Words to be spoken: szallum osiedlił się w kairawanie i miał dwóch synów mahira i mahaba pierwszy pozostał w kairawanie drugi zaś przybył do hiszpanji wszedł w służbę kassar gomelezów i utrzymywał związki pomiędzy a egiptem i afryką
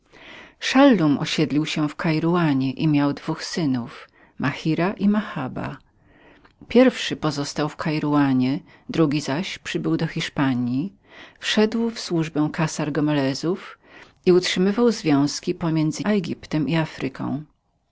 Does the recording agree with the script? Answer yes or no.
yes